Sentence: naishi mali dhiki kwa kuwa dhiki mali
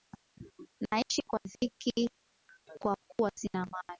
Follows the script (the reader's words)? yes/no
no